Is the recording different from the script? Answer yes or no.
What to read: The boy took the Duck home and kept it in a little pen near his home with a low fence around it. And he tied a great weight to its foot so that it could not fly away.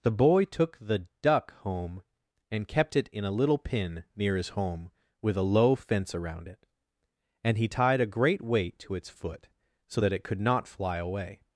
no